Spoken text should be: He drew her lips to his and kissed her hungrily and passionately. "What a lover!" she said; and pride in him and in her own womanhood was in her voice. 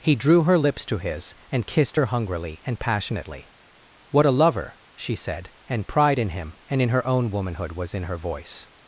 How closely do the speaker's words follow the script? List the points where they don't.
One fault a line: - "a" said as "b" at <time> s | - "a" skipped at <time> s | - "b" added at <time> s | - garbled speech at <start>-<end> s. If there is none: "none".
none